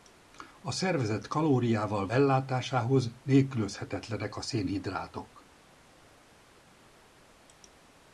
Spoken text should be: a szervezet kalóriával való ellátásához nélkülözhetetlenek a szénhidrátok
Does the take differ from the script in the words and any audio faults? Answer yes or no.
yes